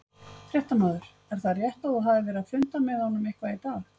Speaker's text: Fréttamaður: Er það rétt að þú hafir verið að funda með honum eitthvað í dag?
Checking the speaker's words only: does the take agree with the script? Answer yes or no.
yes